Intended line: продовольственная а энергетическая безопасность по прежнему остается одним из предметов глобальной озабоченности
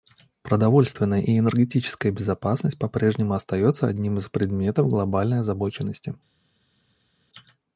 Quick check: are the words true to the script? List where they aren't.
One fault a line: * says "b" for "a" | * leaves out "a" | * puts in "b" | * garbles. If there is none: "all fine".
* says "и" for "а"